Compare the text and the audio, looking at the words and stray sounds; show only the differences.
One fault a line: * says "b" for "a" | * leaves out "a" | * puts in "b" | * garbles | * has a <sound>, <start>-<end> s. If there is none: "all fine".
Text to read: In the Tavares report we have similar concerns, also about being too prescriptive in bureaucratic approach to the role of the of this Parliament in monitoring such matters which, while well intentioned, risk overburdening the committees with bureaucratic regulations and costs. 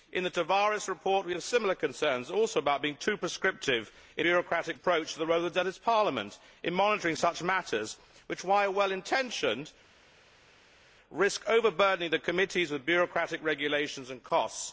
all fine